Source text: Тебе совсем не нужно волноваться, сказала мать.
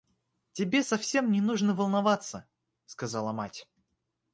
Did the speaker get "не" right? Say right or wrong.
right